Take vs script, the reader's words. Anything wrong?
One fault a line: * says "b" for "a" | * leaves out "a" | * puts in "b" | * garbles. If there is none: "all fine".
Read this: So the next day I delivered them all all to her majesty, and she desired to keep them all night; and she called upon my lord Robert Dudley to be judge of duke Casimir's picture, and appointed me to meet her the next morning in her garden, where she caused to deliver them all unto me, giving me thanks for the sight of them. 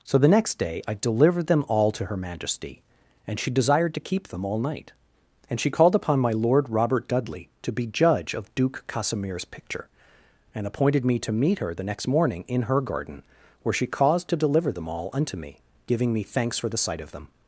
* leaves out "all"